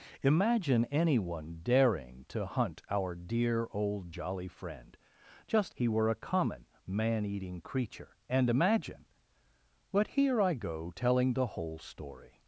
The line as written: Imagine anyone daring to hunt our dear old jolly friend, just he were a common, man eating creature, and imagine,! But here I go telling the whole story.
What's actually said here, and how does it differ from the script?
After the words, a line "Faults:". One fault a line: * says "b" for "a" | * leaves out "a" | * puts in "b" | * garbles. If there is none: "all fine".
Imagine anyone daring to hunt our dear old jolly friend, just he were a common, man eating creature, and imagine,! But here I go telling the whole story.
Faults:
all fine